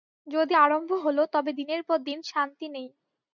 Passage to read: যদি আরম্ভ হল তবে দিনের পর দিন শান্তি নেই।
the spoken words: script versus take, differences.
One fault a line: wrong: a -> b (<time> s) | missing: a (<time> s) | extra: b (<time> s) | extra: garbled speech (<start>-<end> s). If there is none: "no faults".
no faults